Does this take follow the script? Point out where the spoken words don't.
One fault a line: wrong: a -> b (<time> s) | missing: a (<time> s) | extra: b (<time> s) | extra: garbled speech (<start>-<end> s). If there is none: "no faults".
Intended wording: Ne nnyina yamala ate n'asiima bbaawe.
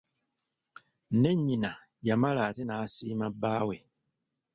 no faults